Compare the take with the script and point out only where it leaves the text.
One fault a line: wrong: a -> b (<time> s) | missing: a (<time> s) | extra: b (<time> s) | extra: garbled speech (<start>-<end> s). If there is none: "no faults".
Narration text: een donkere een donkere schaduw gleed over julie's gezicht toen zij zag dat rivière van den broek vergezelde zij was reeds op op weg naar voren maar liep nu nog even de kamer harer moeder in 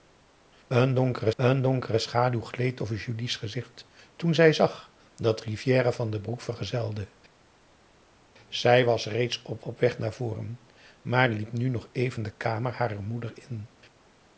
no faults